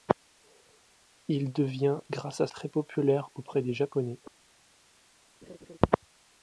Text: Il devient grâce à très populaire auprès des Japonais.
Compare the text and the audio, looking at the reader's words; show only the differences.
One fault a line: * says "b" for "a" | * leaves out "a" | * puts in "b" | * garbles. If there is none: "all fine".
all fine